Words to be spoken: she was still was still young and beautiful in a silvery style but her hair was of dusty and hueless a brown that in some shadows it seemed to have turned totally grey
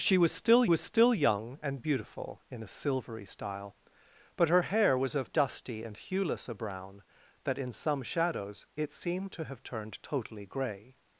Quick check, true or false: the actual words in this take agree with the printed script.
true